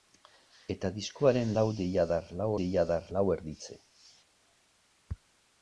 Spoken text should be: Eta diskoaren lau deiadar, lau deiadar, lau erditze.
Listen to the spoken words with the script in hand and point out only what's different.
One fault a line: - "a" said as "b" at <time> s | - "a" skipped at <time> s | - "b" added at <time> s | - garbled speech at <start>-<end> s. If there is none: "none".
none